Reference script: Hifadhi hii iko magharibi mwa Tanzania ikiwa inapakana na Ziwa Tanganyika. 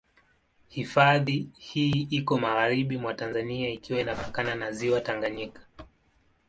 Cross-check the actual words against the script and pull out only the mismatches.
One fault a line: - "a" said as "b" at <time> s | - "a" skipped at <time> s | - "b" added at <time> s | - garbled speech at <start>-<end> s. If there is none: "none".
none